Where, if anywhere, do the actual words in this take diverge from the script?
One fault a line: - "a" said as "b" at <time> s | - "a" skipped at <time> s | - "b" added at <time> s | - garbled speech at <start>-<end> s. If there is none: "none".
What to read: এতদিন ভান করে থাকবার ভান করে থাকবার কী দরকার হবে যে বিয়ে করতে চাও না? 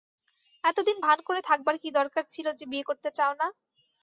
- "ভান করে থাকবার" skipped at 1.8 s
- "হবে" said as "ছিল" at 2.3 s